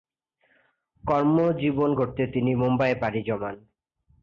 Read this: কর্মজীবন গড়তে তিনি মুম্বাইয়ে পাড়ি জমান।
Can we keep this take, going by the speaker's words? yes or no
yes